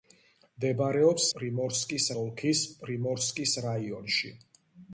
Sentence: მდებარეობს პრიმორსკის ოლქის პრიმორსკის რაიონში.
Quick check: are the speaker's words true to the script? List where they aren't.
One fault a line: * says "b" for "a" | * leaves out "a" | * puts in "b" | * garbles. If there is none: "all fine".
all fine